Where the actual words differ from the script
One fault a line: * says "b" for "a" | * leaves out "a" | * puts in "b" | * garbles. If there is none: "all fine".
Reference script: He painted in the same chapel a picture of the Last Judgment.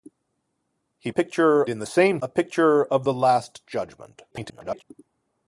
* says "picture" for "painted"
* leaves out "chapel"
* garbles